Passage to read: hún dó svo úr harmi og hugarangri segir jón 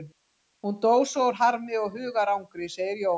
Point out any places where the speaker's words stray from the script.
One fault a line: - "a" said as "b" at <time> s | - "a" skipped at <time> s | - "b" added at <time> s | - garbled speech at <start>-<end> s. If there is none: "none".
none